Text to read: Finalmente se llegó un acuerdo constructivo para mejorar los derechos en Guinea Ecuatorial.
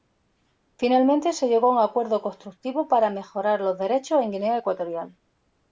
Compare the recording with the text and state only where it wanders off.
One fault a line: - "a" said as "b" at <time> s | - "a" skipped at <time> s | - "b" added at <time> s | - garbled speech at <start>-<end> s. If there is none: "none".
- "a" added at 1.7 s